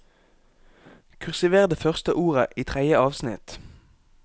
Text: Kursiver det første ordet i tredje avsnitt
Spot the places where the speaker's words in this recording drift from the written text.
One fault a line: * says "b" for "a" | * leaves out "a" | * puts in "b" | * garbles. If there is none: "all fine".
all fine